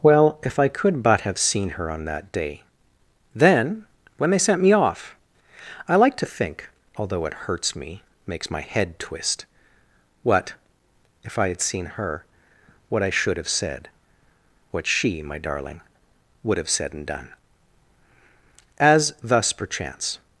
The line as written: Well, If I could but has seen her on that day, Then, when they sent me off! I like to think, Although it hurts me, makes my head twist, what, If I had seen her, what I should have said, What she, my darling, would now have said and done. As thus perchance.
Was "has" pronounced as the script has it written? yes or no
no